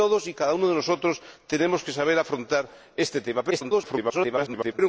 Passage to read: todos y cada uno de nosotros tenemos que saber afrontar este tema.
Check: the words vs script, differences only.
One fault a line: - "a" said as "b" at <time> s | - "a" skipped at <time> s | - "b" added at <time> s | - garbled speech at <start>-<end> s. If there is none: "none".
- garbled speech at 3.5-4.8 s